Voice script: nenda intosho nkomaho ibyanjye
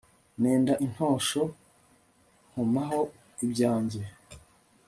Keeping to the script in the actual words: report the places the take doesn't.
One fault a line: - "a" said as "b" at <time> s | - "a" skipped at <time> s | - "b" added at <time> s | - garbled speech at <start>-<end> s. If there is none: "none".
none